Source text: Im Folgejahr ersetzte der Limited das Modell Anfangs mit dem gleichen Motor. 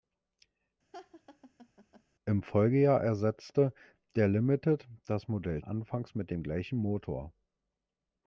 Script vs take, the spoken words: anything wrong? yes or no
no